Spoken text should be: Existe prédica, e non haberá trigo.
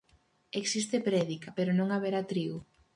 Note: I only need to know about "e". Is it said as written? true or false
false